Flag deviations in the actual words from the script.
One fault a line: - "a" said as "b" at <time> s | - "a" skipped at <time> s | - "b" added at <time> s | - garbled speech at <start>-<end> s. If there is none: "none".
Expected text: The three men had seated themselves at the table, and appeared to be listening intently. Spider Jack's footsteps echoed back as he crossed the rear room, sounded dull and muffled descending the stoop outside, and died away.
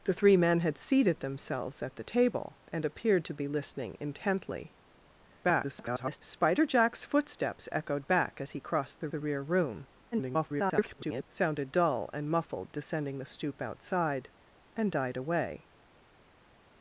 - garbled speech at 5.4-6.2 s
- "the" added at 9.1 s
- garbled speech at 10.1-11.2 s